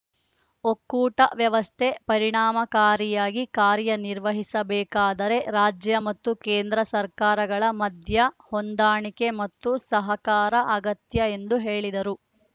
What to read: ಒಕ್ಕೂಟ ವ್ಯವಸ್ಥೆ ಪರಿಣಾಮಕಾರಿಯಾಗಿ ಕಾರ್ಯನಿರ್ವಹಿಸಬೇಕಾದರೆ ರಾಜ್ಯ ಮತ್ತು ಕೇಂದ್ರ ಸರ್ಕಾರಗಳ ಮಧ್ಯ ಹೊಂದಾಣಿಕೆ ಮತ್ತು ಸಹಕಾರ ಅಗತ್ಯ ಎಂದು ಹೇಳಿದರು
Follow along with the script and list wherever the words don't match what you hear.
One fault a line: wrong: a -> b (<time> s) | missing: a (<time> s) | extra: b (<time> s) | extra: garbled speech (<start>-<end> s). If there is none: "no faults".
no faults